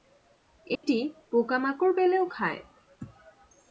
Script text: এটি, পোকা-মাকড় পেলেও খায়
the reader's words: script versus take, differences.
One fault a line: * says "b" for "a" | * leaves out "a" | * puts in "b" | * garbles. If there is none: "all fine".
all fine